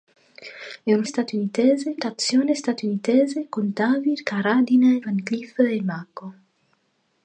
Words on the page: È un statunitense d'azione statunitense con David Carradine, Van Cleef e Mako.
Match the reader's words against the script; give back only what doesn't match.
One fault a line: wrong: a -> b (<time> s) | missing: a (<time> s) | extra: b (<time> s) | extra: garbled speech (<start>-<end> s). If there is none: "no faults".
no faults